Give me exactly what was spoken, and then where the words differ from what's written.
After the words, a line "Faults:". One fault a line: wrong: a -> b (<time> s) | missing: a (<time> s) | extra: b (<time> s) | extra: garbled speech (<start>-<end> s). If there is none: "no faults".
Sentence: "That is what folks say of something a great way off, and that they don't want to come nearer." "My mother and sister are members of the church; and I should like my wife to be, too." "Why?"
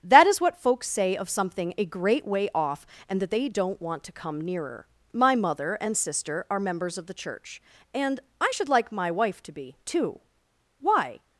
"That is what folks say of something a great way off, and that they don't want to come nearer." "My mother and sister are members of the church; and I should like my wife to be, too." "Why?"
Faults:
no faults